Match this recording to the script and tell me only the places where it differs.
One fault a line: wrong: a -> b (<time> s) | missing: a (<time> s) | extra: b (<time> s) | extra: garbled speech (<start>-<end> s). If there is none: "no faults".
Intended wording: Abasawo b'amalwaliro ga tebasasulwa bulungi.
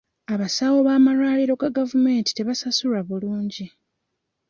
extra: gavumenti (1.8 s)